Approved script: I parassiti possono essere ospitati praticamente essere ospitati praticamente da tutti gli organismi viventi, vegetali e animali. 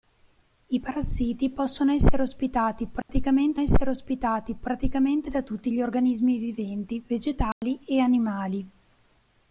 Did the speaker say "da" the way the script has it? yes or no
yes